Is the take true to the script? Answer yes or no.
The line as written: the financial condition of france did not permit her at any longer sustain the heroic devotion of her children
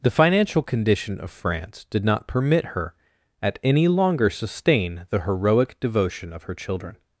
yes